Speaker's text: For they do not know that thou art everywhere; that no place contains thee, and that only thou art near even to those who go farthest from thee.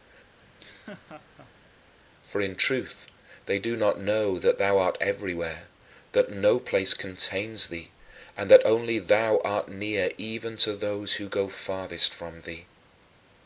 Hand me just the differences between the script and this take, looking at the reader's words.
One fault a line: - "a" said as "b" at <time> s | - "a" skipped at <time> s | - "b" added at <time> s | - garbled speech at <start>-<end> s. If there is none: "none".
- "in truth" added at 2.4 s